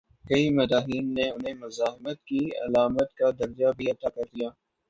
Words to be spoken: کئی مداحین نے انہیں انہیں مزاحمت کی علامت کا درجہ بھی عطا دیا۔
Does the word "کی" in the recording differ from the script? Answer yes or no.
no